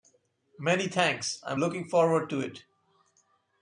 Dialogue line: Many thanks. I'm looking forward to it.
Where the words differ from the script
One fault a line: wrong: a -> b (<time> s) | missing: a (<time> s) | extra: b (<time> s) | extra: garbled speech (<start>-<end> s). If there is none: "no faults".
no faults